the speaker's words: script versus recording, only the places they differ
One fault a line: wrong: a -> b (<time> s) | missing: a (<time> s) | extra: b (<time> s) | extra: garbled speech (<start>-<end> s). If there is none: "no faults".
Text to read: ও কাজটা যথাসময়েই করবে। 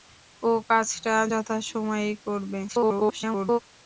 extra: garbled speech (2.7-3.6 s)